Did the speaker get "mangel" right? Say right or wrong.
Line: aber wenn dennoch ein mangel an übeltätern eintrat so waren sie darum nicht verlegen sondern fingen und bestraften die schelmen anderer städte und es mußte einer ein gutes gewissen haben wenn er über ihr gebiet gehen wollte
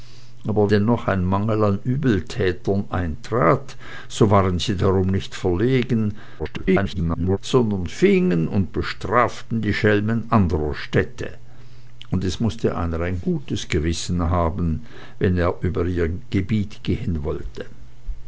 right